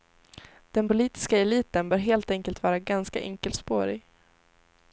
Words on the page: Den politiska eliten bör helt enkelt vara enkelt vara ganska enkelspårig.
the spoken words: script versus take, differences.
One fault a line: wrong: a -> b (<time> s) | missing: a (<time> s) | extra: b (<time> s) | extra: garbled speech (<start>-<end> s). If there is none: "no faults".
missing: enkelt vara (2.8 s)